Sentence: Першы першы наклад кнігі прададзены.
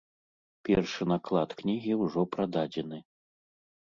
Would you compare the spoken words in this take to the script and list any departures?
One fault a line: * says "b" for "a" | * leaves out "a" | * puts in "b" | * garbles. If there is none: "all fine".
* leaves out "першы"
* puts in "ўжо"